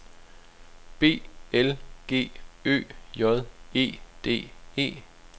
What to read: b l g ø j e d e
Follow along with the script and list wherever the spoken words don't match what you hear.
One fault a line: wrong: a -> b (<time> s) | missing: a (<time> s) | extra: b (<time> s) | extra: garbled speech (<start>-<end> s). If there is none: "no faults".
no faults